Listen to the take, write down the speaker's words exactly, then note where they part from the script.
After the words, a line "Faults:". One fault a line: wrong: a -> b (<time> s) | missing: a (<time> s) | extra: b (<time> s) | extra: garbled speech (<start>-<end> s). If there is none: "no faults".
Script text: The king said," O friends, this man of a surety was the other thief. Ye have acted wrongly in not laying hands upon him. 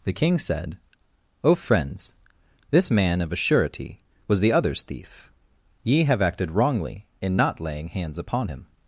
The king said," O friends, this man of a surety was the others thief. Ye have acted wrongly in not laying hands upon him.
Faults:
wrong: other -> others (4.5 s)